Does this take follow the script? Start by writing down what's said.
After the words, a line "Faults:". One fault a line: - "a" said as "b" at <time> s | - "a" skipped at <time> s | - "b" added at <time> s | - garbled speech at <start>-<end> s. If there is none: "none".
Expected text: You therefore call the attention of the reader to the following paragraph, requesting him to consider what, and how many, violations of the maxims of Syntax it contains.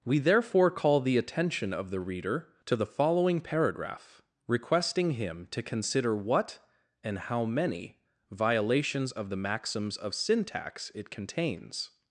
We therefore call the attention of the reader to the following paragraph, requesting him to consider what, and how many, violations of the maxims of Syntax it contains.
Faults:
- "You" said as "We" at 0.0 s